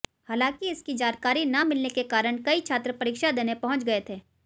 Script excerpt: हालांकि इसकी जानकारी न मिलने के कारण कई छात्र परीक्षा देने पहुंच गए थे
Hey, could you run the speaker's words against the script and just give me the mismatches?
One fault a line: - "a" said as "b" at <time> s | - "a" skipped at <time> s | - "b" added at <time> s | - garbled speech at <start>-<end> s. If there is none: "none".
none